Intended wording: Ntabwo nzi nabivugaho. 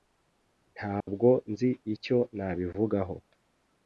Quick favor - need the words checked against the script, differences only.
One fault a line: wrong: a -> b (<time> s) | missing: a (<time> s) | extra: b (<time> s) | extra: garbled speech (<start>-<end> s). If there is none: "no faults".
extra: icyo (1.9 s)